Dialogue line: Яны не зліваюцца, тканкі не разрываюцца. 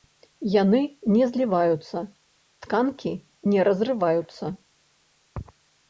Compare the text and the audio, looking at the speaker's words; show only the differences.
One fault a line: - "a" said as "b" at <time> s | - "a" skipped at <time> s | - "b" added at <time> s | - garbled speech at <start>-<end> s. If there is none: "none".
none